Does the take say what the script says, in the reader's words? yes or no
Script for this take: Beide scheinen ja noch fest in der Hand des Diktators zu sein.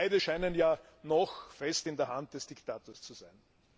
yes